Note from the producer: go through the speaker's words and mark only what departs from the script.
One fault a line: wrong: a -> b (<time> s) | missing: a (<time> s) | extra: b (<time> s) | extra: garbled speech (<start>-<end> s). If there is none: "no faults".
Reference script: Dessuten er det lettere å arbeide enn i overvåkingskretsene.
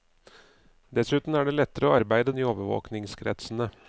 no faults